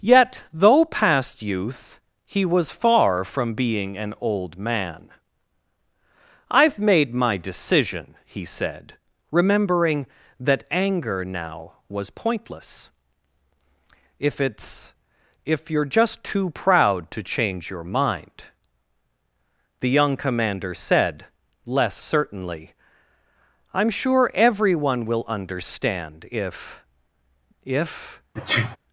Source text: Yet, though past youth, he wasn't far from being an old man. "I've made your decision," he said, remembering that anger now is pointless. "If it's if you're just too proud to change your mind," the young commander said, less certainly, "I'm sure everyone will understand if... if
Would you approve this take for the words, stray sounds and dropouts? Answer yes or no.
no